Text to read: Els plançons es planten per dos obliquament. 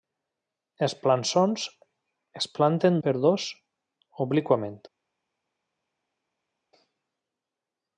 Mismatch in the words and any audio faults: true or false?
false